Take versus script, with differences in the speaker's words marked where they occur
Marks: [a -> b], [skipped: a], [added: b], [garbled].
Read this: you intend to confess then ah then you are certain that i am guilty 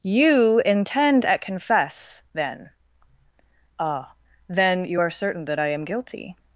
you intend [to -> at] confess then ah then you are certain that i am guilty